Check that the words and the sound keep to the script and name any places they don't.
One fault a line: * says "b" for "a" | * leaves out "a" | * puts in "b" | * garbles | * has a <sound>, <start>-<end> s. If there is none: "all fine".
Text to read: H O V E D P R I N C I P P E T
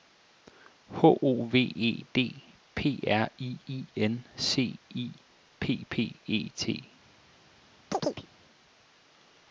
* puts in "I"
* has a chirp, 7.9-8.3 s